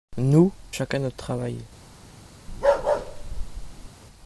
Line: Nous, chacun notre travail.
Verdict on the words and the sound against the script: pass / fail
fail